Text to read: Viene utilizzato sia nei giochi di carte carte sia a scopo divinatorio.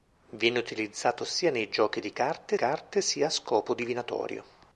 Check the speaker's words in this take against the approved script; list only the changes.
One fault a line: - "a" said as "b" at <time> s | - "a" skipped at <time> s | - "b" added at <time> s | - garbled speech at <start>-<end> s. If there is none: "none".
none